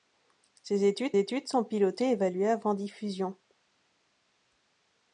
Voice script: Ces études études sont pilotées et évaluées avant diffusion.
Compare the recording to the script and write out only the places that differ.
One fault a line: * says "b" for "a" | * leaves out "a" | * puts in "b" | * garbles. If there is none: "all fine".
all fine